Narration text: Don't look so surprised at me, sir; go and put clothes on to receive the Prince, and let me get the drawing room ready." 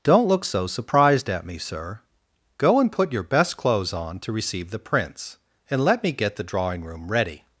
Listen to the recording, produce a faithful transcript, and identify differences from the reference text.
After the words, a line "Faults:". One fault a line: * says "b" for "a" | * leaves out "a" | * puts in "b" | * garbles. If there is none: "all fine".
Don't look so surprised at me, sir; go and put your best clothes on to receive the Prince, and let me get the drawing room ready."
Faults:
* puts in "your best"